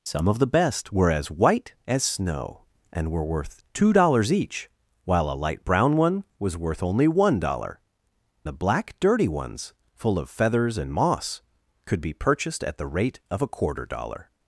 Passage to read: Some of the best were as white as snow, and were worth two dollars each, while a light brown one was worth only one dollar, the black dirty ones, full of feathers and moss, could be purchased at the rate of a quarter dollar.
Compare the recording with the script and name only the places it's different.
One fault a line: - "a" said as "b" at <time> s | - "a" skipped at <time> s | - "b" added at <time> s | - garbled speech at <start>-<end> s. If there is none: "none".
none